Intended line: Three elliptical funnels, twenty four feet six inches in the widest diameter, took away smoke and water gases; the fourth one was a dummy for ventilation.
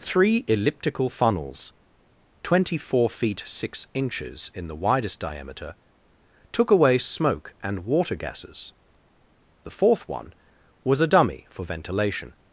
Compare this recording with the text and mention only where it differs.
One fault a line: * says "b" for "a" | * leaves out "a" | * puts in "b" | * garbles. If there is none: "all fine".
all fine